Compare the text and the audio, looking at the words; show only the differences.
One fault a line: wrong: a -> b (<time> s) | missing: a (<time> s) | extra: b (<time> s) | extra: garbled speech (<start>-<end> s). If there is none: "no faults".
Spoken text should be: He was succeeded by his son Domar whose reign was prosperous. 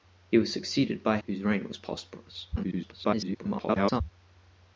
missing: his son Domar (1.2 s)
extra: garbled speech (2.5-4.0 s)